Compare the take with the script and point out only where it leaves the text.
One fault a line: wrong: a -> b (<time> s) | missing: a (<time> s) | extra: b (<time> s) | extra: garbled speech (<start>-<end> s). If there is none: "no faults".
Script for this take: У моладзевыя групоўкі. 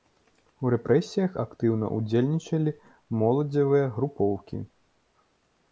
extra: рэпрэсіях актыўна ўдзельнічалі (0.7 s)